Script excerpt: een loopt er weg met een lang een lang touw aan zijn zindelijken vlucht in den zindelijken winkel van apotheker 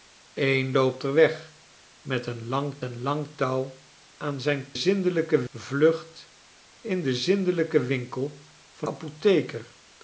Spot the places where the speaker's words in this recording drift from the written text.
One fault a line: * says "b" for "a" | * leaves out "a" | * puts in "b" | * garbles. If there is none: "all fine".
all fine